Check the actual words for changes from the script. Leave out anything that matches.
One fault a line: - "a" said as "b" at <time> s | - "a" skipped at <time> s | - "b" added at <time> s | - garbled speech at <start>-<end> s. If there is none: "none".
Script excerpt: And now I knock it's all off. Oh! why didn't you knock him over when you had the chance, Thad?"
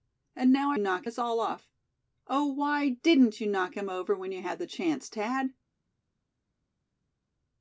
none